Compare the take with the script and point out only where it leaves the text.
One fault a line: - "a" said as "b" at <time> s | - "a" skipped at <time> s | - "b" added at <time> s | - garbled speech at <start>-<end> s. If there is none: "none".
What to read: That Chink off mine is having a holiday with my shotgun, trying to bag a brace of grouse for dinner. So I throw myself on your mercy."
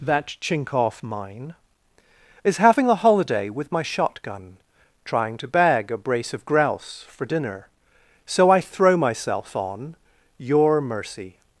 none